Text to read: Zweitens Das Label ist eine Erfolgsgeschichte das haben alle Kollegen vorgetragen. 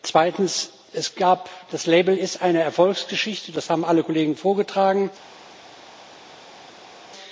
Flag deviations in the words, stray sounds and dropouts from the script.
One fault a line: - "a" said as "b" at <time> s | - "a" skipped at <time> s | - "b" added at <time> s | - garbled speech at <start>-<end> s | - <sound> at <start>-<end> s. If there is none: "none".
none